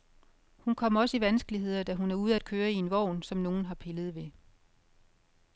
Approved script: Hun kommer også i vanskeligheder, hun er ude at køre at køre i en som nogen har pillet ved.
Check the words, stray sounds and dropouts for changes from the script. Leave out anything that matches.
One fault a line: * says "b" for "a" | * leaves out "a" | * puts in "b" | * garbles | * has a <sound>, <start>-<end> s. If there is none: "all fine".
* puts in "da"
* leaves out "at køre"
* puts in "vogn"